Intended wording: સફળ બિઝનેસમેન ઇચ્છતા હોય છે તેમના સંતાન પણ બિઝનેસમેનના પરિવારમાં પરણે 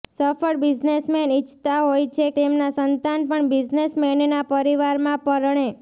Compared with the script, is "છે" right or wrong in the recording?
right